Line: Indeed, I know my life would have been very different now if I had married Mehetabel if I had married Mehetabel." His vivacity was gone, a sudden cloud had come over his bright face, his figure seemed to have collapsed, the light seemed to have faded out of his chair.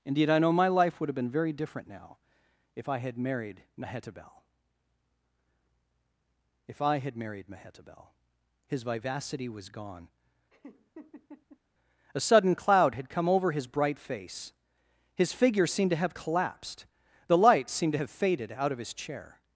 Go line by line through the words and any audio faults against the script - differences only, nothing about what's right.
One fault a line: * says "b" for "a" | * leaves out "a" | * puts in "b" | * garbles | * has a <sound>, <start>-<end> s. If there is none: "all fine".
* has a laugh, 10.5-11.6 s